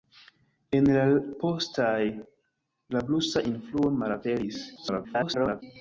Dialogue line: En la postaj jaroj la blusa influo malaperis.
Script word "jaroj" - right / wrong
wrong